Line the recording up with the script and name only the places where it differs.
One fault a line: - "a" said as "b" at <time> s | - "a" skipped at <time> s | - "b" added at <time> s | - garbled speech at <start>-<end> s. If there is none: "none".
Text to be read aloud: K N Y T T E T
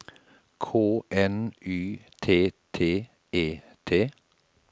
none